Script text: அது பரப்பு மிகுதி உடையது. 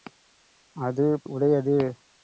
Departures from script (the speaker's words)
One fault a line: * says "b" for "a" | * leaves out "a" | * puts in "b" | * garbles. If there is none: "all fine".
* leaves out "பரப்பு மிகுதி"